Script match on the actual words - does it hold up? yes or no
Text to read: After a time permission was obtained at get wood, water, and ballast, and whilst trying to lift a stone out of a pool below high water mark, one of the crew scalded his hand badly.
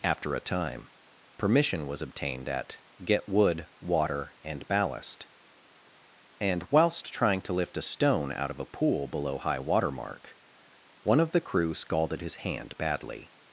yes